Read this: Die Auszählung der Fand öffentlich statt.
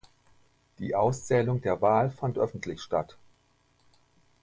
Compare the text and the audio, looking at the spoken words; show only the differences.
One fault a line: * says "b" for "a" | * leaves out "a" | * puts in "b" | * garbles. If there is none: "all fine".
* puts in "Wahl"